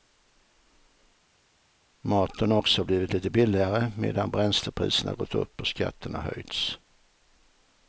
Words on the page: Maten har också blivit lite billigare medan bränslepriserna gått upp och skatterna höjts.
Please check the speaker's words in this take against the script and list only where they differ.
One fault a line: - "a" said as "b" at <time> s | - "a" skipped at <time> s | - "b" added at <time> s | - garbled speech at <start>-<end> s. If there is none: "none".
none